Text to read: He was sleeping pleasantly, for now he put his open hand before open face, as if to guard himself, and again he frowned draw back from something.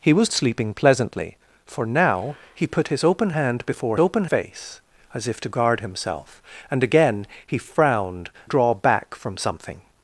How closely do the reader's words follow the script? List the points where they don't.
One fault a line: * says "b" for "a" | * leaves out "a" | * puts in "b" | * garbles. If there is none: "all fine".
all fine